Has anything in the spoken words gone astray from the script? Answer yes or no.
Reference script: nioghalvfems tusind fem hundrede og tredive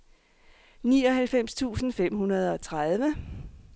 no